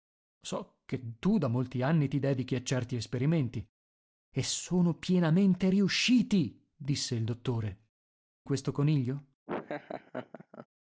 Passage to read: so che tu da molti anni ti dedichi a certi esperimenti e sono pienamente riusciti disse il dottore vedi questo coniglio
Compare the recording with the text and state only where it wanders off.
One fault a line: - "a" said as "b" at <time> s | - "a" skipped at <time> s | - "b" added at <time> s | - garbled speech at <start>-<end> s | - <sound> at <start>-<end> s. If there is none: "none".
- "vedi" skipped at 7.9 s
- laugh at 9.5-10.7 s